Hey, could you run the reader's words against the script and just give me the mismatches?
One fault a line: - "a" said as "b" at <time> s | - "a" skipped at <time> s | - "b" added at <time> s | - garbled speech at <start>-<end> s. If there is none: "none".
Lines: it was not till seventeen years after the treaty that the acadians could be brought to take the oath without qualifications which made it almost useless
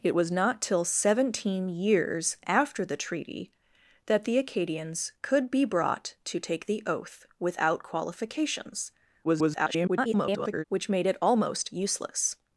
- garbled speech at 9.2-10.6 s